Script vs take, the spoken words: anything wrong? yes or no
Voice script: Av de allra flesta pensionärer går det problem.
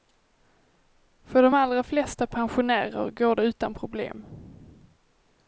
yes